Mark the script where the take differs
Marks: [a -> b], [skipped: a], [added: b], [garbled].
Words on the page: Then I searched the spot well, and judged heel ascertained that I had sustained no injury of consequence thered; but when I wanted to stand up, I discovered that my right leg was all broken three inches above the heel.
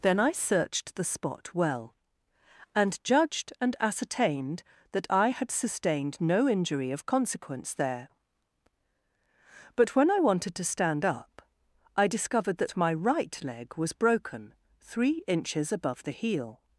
Then I searched the spot well, and judged [heel -> and] ascertained that I had sustained no injury of consequence [thered; -> there] but when I wanted to stand up, I discovered that my right leg was [skipped: all] broken three inches above the heel.